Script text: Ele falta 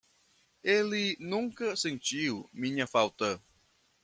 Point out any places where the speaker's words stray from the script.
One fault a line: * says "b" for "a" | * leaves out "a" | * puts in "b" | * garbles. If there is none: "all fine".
* puts in "nunca sentiu minha"